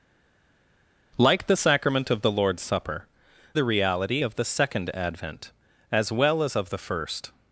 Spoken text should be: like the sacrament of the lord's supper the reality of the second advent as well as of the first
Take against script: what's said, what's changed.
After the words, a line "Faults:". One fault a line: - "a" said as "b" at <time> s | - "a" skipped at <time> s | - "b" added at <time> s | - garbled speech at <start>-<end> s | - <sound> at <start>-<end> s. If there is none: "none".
like the sacrament of the lord's supper the reality of the second advent as well as of the first
Faults:
none